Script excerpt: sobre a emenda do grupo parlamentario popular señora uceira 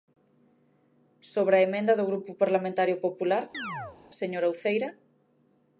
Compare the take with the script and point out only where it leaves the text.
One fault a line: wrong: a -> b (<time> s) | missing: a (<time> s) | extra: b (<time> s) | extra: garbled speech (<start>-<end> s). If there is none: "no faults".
no faults